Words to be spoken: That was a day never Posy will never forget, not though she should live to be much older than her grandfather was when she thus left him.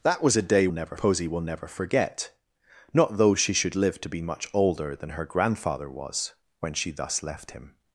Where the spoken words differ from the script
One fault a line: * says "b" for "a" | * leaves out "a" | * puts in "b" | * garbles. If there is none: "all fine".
all fine